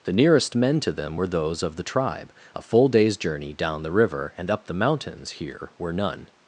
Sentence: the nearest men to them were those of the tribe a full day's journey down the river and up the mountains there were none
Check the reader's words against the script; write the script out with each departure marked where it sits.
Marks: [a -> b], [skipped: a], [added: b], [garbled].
the nearest men to them were those of the tribe a full day's journey down the river and up the mountains [there -> here] were none